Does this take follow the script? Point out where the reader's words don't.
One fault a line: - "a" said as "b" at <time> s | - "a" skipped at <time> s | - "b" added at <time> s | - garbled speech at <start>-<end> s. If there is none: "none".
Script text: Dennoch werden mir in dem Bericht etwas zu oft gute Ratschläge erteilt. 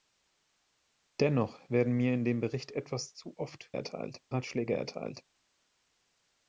- "gute" said as "erteilt" at 3.7 s